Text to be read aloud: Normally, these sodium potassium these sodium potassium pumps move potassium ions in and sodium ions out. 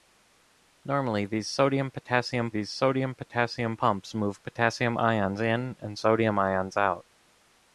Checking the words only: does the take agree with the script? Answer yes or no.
yes